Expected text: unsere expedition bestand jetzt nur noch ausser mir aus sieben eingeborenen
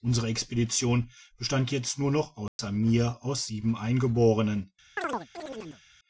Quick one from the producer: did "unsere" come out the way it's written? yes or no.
yes